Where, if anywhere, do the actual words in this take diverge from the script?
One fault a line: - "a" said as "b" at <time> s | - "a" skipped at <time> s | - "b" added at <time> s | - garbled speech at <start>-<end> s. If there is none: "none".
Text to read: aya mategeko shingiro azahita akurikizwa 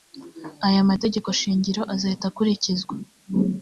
none